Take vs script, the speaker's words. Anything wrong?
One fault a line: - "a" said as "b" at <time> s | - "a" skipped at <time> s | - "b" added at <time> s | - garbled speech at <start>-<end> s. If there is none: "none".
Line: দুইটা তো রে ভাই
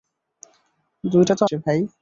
none